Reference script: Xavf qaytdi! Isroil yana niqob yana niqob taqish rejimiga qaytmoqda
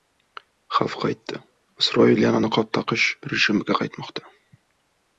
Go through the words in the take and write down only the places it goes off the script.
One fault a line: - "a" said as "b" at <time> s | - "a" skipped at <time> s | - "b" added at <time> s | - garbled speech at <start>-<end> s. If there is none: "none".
- "yana niqob" skipped at 2.7 s